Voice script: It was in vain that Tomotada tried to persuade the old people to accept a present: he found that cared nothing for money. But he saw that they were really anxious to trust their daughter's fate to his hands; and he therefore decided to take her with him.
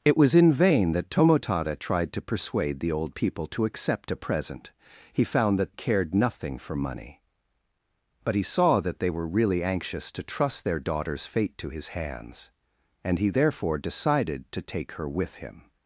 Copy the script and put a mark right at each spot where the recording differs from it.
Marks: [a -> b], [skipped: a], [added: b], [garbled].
It was in vain that Tomotada tried to persuade the old people to accept a present: he found that cared nothing for money. But he saw that they were really anxious to trust their daughter's fate to his hands; and he therefore decided to take her with him.